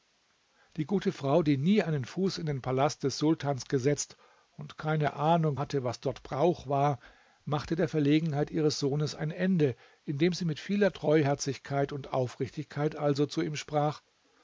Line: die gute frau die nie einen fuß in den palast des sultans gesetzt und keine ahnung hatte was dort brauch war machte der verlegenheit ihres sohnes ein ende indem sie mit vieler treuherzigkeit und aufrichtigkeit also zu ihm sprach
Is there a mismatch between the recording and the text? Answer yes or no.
no